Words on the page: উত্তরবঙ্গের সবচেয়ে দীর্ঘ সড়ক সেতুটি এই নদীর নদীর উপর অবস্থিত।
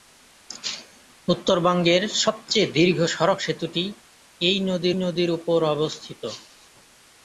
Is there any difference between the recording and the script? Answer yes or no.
no